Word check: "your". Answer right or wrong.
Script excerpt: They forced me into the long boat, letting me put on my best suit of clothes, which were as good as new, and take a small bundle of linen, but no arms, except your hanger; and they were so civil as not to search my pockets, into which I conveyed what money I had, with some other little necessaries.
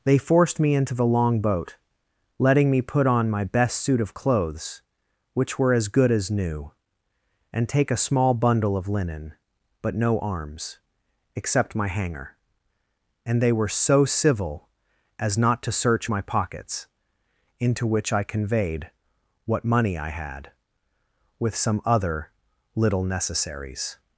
wrong